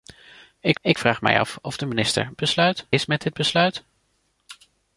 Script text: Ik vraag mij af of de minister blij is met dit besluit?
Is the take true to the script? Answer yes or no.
no